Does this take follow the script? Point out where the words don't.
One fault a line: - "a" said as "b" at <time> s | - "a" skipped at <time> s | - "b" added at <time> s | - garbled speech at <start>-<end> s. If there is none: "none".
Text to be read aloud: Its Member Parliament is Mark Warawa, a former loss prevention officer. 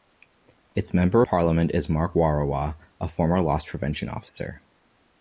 none